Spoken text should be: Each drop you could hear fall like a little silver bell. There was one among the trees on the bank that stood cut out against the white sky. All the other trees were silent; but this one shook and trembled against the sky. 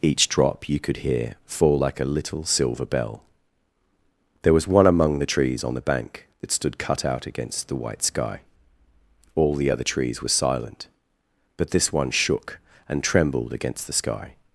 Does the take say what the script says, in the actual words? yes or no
yes